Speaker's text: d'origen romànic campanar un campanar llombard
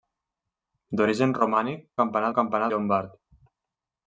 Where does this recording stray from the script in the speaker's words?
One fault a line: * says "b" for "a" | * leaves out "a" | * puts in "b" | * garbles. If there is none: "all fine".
all fine